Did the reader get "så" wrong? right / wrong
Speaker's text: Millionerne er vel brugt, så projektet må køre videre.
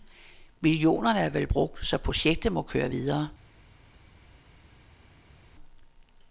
right